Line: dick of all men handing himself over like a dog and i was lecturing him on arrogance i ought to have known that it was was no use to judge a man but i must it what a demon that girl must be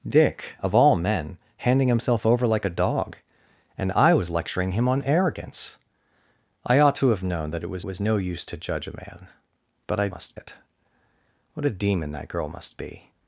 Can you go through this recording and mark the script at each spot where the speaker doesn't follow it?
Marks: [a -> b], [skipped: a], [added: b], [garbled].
dick of all men handing himself over like a dog and i was lecturing him on arrogance i ought to have known that it was was no use to judge a man but i must it what a demon that girl must be